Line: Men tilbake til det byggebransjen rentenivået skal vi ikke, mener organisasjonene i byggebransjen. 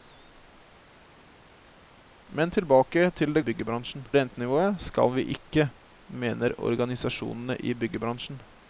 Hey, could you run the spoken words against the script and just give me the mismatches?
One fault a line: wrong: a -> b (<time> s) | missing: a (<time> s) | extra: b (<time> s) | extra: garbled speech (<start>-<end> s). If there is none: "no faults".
no faults